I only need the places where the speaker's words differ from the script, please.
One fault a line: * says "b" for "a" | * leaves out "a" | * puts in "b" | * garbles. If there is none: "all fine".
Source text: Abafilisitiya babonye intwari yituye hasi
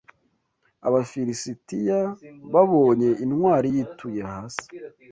all fine